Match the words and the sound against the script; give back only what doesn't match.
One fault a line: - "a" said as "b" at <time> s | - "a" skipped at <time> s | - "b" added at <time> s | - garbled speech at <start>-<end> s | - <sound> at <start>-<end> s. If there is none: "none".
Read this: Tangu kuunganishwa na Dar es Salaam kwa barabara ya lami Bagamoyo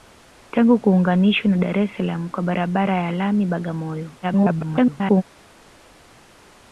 - garbled speech at 4.2-5.2 s